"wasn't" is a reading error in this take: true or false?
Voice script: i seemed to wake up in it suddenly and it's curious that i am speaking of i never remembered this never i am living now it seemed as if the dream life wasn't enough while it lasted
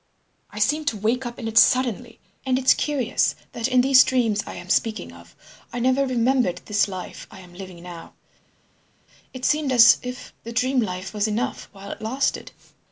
true